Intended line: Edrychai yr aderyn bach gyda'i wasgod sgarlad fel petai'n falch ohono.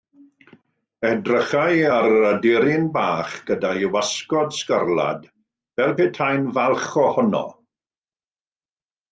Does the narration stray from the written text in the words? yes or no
yes